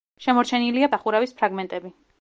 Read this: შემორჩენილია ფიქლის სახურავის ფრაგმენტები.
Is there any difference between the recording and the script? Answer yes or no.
yes